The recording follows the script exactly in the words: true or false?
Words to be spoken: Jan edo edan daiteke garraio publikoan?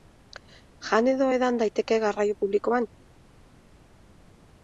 true